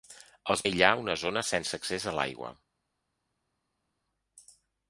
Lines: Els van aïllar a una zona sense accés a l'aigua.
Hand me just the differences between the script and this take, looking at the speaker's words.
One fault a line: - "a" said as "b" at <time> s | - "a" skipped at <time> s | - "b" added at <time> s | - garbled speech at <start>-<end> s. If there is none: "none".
- "van" skipped at 0.6 s